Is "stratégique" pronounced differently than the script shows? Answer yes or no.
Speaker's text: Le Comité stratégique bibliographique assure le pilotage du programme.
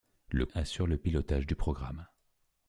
yes